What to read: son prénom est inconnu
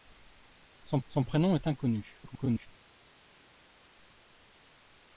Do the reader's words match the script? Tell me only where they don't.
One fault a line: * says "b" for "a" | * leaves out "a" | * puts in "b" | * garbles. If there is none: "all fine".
* puts in "son"
* garbles